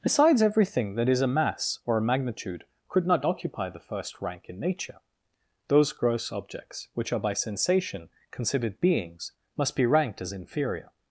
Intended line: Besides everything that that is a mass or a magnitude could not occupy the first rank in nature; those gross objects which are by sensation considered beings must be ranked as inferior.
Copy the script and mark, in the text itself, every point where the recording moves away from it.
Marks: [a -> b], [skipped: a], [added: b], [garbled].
Besides everything that [skipped: that] is a mass or a magnitude could not occupy the first rank in nature; those gross objects which are by sensation considered beings must be ranked as inferior.